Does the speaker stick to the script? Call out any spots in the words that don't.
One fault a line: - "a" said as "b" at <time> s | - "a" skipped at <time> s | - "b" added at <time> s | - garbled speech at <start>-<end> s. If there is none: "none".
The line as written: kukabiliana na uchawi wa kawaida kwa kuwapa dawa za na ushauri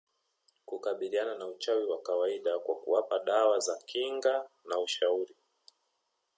- "kinga" added at 3.9 s